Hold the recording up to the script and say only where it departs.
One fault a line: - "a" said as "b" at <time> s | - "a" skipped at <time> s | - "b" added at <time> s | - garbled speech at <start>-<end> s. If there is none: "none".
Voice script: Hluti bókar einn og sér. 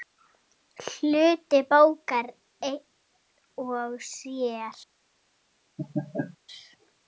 none